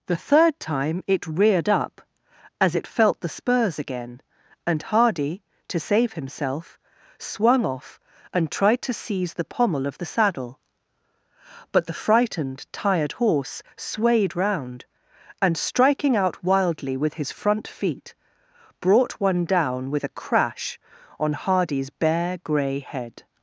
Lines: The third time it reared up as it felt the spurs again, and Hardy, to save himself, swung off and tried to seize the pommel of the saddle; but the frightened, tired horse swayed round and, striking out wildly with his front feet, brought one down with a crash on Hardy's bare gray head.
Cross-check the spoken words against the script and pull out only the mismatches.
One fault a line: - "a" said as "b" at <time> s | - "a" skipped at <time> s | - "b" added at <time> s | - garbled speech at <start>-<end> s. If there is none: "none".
none